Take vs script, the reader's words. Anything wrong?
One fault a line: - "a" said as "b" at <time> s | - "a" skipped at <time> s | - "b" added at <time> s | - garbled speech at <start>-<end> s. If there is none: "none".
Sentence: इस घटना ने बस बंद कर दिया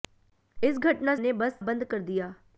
none